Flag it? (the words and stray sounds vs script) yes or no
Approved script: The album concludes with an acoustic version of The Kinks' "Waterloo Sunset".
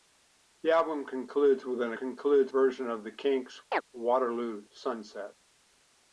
yes